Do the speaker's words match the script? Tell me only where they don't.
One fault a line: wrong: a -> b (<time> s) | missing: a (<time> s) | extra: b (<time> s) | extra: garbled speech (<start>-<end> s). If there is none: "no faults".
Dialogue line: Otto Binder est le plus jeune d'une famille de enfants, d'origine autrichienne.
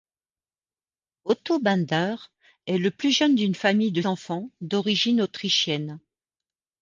no faults